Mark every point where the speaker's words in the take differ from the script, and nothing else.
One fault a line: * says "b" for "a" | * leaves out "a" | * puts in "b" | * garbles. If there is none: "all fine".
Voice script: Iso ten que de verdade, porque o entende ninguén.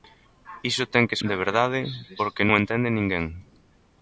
all fine